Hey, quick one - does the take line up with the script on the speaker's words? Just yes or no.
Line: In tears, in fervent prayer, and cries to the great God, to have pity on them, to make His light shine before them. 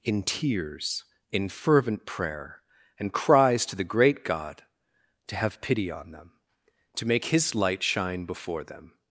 yes